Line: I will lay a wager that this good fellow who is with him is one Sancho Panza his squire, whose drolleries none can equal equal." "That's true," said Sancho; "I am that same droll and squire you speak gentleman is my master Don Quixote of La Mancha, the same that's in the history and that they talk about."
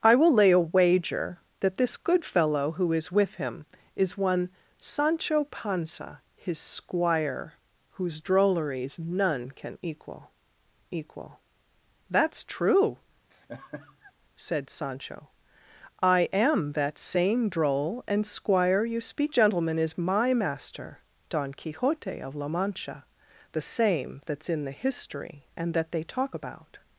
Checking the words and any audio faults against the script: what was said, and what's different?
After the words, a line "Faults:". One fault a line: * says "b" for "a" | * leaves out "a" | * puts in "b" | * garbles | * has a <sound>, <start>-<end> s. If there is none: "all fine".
I will lay a wager that this good fellow who is with him is one Sancho Panza his squire, whose drolleries none can equal equal." "That's true," said Sancho; "I am that same droll and squire you speak gentleman is my master Don Quixote of La Mancha, the same that's in the history and that they talk about."
Faults:
* has a laugh, 13.3-14.1 s